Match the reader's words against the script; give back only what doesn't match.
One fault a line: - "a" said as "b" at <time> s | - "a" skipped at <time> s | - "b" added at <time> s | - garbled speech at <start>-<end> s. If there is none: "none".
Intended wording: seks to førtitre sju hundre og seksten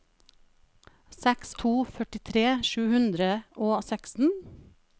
none